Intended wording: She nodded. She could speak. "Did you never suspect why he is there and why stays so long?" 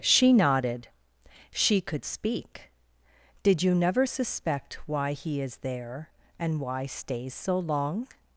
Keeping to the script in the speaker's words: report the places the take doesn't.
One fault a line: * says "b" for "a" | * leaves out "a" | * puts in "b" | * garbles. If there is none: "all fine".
all fine